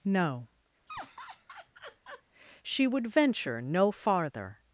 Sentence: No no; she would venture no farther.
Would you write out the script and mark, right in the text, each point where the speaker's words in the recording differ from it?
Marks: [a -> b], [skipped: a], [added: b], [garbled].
No [skipped: no;] she would venture no farther.